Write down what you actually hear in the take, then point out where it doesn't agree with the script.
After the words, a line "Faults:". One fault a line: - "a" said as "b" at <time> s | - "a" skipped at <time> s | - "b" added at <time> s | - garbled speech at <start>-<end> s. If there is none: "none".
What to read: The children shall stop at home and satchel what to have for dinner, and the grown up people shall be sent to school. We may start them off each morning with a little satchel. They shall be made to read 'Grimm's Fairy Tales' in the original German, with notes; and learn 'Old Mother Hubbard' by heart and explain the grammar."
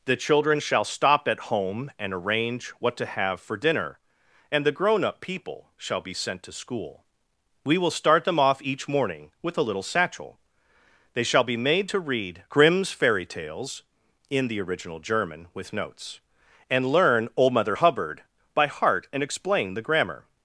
The children shall stop at home and arrange what to have for dinner, and the grown up people shall be sent to school. We will start them off each morning with a little satchel. They shall be made to read 'Grimm's Fairy Tales' in the original German, with notes; and learn 'Old Mother Hubbard' by heart and explain the grammar."
Faults:
- "satchel" said as "arrange" at 2.1 s
- "may" said as "will" at 7.8 s